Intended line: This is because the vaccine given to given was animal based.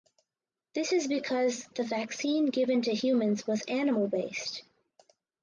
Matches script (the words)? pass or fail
fail